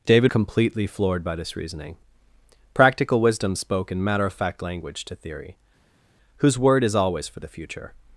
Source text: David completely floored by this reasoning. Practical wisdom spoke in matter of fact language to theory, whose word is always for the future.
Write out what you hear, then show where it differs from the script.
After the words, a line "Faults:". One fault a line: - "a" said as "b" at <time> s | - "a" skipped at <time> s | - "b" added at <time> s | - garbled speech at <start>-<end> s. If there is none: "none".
David completely floored by this reasoning. Practical wisdom spoke in matter of fact language to theory, whose word is always for the future.
Faults:
none